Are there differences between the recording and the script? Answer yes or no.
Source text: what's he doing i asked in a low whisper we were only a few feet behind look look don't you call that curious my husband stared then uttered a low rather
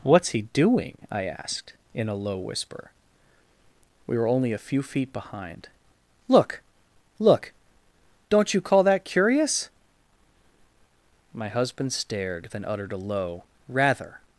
no